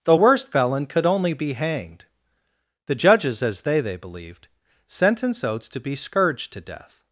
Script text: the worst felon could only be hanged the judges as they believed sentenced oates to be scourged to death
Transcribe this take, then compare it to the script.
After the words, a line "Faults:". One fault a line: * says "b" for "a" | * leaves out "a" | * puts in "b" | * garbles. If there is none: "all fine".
the worst felon could only be hanged the judges as they they believed sentenced oates to be scourged to death
Faults:
* puts in "they"